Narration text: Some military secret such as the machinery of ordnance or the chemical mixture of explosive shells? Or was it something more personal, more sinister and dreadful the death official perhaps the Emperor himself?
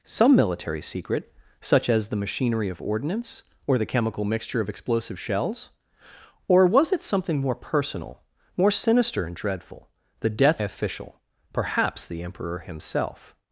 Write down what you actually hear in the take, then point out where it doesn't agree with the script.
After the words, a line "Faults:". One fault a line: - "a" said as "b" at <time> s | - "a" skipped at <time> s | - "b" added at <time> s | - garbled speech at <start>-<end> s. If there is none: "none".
Some military secret such as the machinery of ordnance or the chemical mixture of explosive shells? Or was it something more personal, more sinister and dreadful the death official perhaps the Emperor himself?
Faults:
none